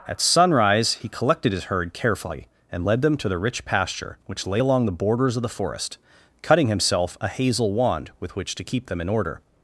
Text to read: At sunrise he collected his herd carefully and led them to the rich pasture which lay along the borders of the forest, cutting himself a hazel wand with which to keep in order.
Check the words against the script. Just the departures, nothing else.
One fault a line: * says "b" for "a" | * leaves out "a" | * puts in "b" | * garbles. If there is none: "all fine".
* puts in "them"